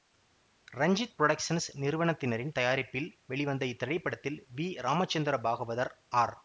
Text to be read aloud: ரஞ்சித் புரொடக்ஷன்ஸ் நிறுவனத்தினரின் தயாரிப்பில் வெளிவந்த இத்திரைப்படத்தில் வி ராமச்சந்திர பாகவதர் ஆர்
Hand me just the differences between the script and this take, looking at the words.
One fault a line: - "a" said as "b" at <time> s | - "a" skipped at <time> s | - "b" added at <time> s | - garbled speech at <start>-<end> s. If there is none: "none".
none